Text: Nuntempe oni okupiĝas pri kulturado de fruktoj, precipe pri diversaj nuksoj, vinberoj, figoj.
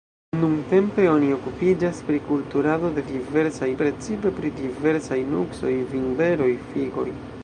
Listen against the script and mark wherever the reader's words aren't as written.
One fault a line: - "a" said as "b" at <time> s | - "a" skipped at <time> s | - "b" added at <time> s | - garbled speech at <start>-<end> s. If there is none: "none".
- "fruktoj" said as "diversaj" at 3.1 s